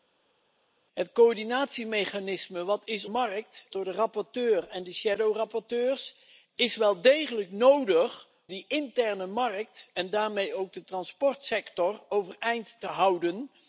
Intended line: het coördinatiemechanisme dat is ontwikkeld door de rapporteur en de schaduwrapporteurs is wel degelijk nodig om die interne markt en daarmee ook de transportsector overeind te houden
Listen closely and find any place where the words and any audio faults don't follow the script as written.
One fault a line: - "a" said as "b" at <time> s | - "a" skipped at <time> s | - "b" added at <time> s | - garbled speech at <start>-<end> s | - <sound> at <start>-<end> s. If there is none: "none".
- "ontwikkeld" said as "markt" at 3.0 s
- "om" skipped at 8.3 s